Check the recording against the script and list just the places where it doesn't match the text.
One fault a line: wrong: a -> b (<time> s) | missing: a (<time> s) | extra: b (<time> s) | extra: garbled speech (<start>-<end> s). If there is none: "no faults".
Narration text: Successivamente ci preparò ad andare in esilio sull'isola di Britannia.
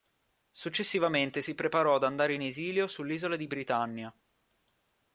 wrong: ci -> si (1.4 s)